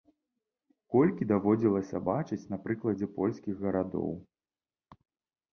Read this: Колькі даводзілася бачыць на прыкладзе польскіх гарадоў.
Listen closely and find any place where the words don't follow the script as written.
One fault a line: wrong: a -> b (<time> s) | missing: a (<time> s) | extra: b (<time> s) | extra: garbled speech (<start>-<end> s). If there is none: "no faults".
no faults